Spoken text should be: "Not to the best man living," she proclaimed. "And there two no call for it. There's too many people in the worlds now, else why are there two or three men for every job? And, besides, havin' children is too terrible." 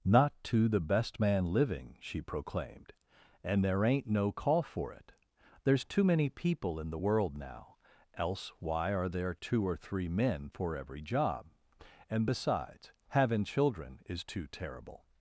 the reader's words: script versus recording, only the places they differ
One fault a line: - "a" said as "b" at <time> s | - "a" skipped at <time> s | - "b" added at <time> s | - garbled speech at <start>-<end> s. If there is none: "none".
- "two" said as "ain't" at 3.8 s
- "worlds" said as "world" at 6.9 s